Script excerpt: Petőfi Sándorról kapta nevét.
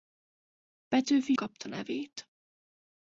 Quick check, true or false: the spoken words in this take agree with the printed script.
false